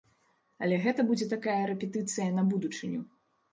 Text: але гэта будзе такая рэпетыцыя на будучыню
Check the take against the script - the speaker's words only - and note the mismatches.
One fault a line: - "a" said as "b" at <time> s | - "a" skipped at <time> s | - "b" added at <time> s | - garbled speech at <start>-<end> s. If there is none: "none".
none